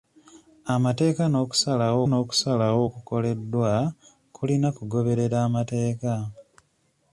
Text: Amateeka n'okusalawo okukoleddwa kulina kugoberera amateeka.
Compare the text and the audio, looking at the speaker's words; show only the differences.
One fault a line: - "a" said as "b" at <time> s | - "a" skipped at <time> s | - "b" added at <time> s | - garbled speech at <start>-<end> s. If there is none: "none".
- "n'okusalawo" added at 2.0 s